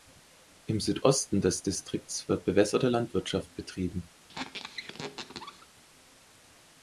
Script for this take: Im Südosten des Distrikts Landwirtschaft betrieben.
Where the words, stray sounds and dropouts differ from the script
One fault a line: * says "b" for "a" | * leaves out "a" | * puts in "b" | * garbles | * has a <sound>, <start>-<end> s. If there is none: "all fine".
* puts in "wird bewässerte"
* has a squeak, 4.3-5.7 s